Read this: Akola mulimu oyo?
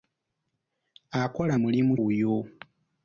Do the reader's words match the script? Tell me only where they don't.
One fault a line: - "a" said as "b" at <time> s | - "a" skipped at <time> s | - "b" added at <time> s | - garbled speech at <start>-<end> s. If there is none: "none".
none